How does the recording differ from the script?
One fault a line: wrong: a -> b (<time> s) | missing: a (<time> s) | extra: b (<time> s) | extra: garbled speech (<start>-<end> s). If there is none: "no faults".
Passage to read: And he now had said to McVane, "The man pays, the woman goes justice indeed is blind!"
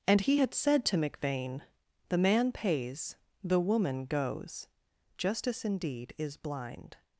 missing: now (0.4 s)